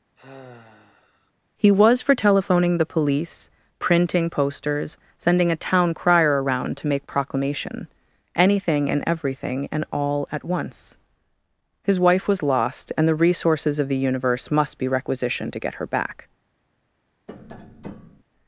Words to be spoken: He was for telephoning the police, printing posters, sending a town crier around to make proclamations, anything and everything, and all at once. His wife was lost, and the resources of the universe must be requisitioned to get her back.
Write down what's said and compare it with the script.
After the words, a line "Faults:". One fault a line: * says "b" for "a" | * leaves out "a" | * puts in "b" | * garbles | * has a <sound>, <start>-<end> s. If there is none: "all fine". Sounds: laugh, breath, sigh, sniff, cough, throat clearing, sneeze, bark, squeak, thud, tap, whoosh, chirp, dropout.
He was for telephoning the police, printing posters, sending a town crier around to make proclamation, anything and everything, and all at once. His wife was lost, and the resources of the universe must be requisitioned to get her back.
Faults:
* has a sigh, 0.2-1.3 s
* says "proclamation" for "proclamations"
* has a tap, 17.3-18.2 s